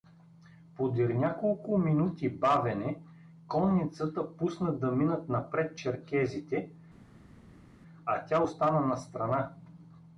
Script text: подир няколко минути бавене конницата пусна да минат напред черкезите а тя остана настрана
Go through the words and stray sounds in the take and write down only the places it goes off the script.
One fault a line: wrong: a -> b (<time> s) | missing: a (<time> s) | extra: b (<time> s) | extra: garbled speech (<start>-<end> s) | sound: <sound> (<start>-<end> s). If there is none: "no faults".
no faults